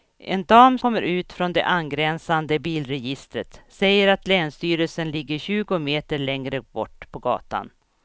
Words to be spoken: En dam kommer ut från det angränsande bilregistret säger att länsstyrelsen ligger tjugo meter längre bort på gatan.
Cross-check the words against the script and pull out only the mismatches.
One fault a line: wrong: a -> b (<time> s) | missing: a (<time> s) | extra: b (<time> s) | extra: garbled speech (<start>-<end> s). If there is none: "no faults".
no faults